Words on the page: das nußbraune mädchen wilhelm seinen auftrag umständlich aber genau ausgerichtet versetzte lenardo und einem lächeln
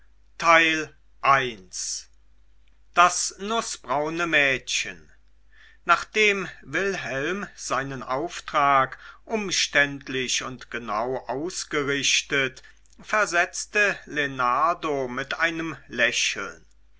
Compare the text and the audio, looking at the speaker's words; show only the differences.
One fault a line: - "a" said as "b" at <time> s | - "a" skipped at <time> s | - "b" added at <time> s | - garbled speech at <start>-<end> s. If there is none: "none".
- "nachdem" added at 5.8 s
- "aber" said as "und" at 10.4 s
- "und" said as "mit" at 15.1 s